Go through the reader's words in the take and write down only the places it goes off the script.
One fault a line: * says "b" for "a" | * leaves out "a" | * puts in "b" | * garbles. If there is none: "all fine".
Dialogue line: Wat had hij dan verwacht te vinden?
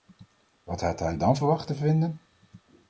all fine